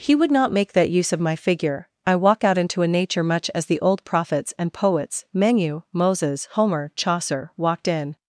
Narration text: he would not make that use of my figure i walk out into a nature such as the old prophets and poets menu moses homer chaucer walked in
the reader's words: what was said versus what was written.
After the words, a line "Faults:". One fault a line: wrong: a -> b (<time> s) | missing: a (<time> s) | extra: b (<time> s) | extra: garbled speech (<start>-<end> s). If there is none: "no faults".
he would not make that use of my figure i walk out into a nature much as the old prophets and poets menu moses homer chaucer walked in
Faults:
wrong: such -> much (3.2 s)